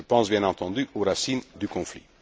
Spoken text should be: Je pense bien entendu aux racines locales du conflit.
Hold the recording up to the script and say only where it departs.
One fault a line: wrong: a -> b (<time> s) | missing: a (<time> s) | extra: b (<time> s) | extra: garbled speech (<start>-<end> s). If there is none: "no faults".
missing: locales (1.4 s)